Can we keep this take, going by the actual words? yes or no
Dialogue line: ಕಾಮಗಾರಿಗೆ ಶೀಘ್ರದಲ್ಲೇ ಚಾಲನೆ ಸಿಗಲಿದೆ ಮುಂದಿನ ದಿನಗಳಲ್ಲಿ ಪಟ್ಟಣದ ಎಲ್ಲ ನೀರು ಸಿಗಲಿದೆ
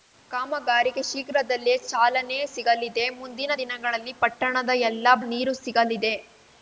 yes